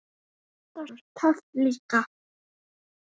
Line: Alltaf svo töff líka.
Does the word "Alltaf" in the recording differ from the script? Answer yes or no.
no